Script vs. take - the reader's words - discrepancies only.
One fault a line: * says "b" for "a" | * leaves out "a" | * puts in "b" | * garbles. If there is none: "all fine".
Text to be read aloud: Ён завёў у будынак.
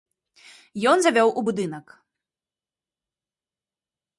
all fine